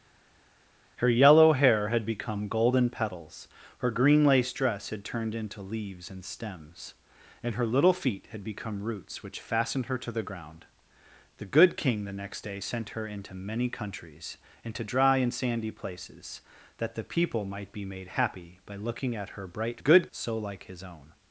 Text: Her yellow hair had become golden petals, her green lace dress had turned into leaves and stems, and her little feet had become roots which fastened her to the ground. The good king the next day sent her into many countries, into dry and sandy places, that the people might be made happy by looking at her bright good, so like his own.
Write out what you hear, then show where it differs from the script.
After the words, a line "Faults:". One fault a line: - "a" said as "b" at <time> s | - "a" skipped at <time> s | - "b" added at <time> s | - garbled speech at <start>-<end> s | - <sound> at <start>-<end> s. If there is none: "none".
Her yellow hair had become golden petals, her green lace dress had turned into leaves and stems, and her little feet had become roots which fastened her to the ground. The good king the next day sent her into many countries, into dry and sandy places, that the people might be made happy by looking at her bright good, so like his own.
Faults:
none